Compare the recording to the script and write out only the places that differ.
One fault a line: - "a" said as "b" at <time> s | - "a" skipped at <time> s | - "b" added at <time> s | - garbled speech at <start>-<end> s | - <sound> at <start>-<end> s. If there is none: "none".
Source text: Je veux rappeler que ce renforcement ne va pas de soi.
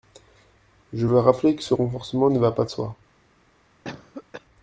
- cough at 3.8-4.5 s